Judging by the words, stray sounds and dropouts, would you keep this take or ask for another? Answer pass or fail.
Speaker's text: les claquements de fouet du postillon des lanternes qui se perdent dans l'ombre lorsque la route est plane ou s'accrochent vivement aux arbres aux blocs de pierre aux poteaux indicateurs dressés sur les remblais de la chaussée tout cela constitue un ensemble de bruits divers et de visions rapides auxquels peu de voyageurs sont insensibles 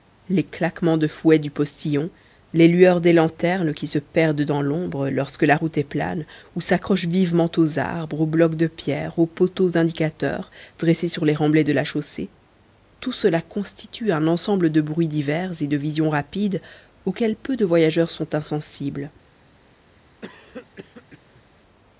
fail